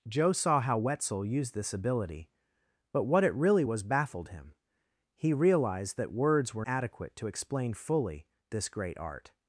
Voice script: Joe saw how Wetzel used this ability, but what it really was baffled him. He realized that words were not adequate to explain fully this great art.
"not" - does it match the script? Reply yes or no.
no